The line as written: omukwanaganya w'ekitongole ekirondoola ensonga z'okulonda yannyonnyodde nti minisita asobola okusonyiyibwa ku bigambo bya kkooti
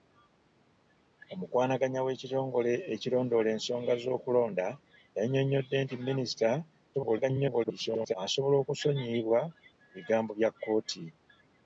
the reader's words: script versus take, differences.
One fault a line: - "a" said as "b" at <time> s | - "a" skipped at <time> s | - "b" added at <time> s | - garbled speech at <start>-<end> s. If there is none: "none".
- garbled speech at 6.9-8.1 s